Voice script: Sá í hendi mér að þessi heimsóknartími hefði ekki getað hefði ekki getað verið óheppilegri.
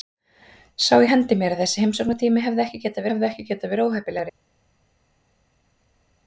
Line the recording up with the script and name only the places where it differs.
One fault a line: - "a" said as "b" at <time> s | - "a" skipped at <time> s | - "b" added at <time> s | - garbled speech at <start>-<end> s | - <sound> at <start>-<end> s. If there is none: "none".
none